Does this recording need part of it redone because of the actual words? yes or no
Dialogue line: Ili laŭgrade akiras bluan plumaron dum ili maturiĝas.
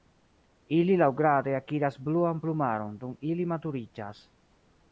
no